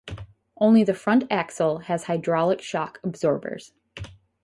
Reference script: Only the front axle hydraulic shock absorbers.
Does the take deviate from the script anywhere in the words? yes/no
yes